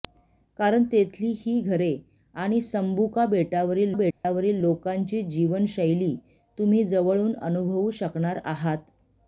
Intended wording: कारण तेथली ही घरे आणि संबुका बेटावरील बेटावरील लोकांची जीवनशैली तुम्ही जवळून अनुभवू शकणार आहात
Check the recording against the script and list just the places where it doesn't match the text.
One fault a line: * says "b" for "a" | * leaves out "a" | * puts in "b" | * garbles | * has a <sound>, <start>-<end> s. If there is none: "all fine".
* has a dropout, 4.1-4.2 s